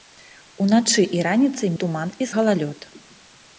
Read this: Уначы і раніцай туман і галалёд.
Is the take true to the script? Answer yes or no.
yes